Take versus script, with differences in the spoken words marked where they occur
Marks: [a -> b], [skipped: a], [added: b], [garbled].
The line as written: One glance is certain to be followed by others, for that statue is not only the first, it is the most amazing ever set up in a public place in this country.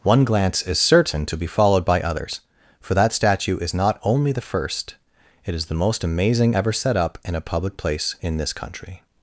One glance is certain to be followed by others, for that statue is not only the first, it is the most amazing ever set up in a public place in this country.